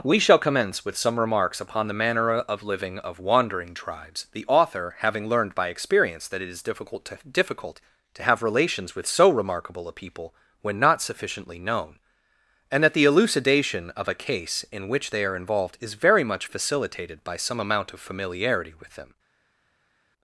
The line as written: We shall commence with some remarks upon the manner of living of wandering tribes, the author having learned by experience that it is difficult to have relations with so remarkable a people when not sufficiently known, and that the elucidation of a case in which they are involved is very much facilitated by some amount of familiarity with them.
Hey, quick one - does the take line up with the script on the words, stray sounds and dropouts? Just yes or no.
no